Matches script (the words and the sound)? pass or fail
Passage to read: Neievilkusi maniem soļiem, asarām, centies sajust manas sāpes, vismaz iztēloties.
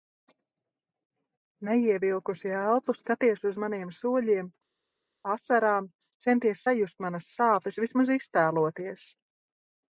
fail